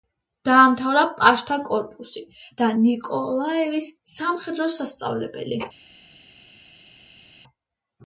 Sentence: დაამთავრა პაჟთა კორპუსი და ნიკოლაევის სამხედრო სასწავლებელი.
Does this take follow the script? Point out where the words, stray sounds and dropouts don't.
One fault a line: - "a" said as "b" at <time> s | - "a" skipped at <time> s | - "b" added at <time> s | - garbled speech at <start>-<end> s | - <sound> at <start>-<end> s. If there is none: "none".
none